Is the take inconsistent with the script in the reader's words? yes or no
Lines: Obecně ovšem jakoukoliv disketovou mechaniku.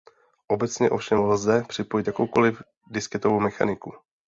yes